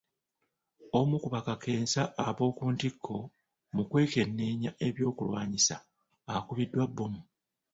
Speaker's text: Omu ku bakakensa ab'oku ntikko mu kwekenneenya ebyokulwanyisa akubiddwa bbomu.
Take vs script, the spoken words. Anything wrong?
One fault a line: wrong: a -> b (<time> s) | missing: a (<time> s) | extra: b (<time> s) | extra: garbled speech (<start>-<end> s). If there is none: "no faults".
no faults